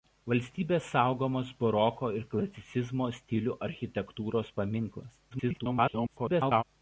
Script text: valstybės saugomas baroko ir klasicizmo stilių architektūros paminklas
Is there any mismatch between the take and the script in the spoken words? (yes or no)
yes